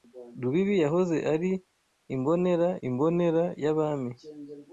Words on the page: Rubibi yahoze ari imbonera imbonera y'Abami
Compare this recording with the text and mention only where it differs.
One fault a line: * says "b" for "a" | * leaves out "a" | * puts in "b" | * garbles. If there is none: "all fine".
all fine